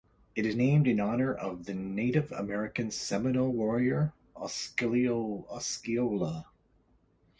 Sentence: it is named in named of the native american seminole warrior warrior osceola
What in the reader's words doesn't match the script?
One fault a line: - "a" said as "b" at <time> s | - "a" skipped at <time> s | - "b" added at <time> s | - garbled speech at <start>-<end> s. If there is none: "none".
- "named" said as "honor" at 1.0 s
- "warrior" skipped at 4.1 s